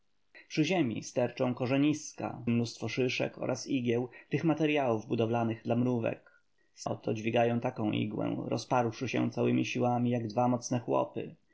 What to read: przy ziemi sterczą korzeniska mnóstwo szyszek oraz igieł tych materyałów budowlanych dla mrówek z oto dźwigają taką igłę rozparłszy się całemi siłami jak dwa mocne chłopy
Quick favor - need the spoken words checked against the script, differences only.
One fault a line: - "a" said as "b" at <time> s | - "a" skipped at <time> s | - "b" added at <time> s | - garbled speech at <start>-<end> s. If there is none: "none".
none